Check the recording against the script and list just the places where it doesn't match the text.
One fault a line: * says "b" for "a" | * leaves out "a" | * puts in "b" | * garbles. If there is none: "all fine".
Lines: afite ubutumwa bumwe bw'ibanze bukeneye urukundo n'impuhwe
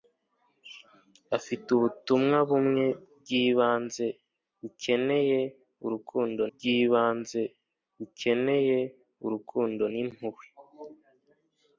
* puts in "bw'ibanze bukeneye urukundo"